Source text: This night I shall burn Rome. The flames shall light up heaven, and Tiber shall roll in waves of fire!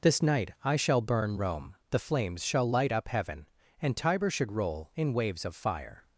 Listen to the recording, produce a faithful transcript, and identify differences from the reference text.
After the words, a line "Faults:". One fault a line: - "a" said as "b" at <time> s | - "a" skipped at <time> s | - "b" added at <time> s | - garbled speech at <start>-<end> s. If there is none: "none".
This night I shall burn Rome. The flames shall light up heaven, and Tiber should roll in waves of fire!
Faults:
- "shall" said as "should" at 4.3 s